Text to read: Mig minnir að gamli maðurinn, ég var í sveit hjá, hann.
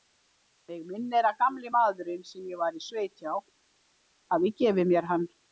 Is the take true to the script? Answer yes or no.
no